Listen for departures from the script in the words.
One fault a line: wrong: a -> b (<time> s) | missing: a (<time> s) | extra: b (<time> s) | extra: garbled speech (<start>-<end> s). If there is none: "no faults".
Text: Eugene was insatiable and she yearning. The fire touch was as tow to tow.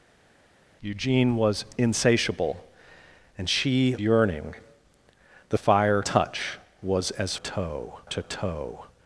no faults